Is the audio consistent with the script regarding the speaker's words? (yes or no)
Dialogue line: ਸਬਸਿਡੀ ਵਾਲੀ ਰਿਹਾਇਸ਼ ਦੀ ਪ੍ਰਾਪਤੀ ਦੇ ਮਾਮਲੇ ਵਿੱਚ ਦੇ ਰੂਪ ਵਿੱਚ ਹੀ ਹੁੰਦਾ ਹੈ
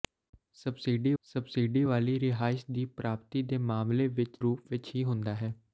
no